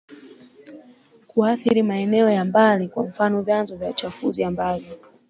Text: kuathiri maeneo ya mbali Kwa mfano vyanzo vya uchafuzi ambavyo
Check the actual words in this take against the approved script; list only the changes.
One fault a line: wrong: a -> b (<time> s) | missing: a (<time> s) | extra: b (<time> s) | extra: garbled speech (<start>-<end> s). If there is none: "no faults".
no faults